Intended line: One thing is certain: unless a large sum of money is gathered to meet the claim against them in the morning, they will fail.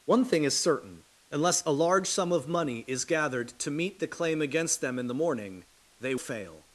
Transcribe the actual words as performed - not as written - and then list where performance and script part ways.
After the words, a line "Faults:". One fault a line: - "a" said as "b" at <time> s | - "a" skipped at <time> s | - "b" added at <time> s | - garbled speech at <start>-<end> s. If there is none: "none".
One thing is certain: unless a large sum of money is gathered to meet the claim against them in the morning, they fail.
Faults:
- "will" skipped at 6.2 s